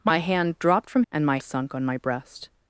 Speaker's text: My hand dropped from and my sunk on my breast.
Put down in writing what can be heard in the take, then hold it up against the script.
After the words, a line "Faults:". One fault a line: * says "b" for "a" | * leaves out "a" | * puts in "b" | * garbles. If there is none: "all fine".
My hand dropped from and my sunk on my breast.
Faults:
all fine